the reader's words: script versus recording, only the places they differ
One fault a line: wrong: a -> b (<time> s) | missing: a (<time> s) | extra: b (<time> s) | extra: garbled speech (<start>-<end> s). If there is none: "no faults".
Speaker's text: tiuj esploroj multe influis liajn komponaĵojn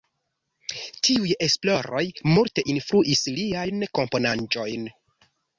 no faults